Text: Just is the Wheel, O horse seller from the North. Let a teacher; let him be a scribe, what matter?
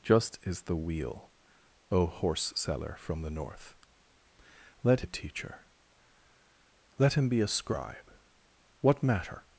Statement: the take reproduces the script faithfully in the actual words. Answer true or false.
true